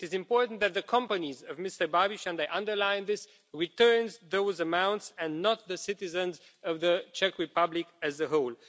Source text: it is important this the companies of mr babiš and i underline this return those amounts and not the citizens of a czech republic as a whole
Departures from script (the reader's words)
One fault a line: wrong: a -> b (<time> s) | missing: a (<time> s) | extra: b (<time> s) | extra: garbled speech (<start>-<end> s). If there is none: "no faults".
wrong: this -> that (0.6 s)
wrong: a -> the (6.8 s)